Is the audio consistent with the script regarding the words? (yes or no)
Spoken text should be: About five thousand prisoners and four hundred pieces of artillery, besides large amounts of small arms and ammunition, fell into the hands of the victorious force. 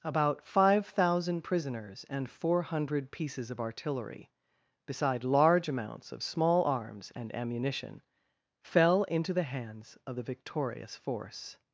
no